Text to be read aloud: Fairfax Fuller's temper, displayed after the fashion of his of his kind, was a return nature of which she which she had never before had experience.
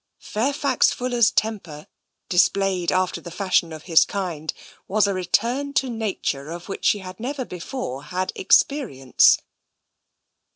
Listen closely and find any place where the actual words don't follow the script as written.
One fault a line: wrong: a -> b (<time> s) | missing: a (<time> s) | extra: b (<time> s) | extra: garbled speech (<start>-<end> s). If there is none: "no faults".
missing: of his (4.1 s)
extra: to (5.7 s)
missing: which she (7.0 s)